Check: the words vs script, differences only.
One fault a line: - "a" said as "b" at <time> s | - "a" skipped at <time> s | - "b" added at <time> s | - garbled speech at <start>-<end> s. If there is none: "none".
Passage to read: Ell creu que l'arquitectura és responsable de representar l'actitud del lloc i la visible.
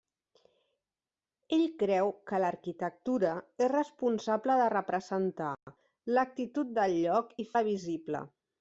none